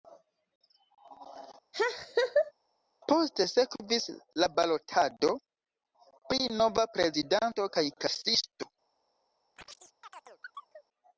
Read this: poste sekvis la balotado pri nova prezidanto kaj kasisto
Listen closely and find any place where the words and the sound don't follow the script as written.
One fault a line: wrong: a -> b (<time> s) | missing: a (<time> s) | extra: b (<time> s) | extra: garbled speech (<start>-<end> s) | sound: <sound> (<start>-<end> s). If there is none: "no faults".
sound: laugh (1.7-2.5 s)
sound: chirp (9.6-10.9 s)